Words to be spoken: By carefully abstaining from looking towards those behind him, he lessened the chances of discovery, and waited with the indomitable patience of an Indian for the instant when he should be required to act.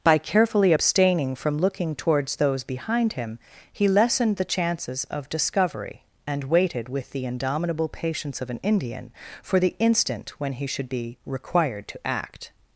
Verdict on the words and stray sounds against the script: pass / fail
pass